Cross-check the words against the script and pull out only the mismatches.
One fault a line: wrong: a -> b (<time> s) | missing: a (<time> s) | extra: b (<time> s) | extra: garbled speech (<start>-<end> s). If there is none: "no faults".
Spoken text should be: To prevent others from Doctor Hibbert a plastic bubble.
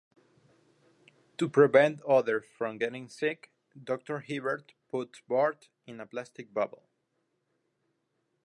extra: getting sick (2.8 s)
extra: puts Bart in (4.9 s)